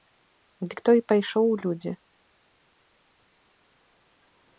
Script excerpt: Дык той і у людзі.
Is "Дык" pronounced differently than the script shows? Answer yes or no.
no